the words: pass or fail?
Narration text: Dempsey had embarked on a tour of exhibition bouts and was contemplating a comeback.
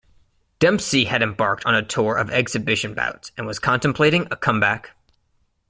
pass